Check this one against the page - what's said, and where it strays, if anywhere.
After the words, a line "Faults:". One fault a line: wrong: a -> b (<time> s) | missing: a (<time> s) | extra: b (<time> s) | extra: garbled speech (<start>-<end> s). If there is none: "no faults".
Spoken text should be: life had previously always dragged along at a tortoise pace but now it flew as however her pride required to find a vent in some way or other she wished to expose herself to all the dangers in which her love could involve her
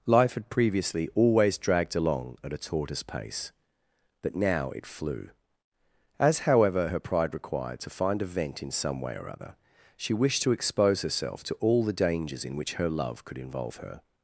life had previously always dragged along at a tortoise pace but now it flew as however her pride required to find a vent in some way or other she wished to expose herself to all the dangers in which her love could involve her
Faults:
no faults